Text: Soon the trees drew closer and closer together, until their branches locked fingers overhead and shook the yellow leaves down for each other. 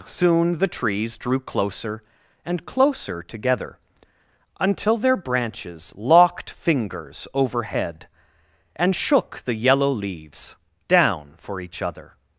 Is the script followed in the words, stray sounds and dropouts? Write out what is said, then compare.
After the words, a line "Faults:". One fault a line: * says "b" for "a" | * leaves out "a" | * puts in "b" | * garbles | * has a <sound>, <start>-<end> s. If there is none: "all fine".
Soon the trees drew closer and closer together, until their branches locked fingers overhead and shook the yellow leaves down for each other.
Faults:
all fine